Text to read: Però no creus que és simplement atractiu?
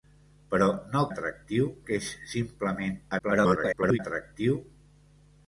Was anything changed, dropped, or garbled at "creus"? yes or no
yes